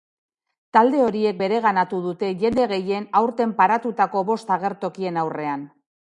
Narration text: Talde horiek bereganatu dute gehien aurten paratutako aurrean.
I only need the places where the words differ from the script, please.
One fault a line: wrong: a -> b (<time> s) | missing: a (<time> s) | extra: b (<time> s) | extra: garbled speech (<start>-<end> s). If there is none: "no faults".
extra: jende (2.4 s)
extra: bost agertokien (4.3 s)